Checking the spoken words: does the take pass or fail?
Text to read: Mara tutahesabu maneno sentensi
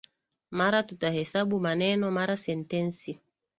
fail